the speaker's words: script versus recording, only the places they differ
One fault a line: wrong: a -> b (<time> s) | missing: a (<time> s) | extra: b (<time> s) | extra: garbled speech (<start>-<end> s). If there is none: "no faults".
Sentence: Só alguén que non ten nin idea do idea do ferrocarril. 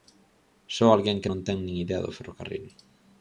missing: idea do (2.1 s)